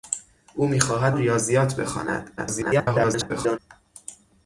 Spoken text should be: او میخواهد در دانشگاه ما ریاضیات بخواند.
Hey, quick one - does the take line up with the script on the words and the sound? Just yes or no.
no